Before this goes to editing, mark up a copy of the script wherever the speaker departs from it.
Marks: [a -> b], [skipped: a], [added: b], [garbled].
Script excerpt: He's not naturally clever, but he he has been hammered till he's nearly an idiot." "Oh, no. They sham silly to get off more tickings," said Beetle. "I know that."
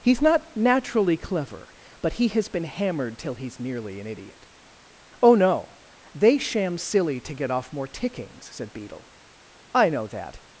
He's not naturally clever, but he [skipped: he] has been hammered till he's nearly an idiot." "Oh, no. They sham silly to get off more tickings," said Beetle. "I know that."